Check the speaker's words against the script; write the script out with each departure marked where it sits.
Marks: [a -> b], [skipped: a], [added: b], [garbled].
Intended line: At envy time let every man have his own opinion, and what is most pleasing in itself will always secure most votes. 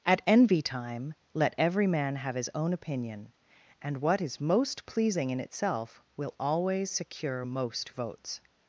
At envy time let every man have his own opinion, and what is most pleasing in itself will always secure most votes.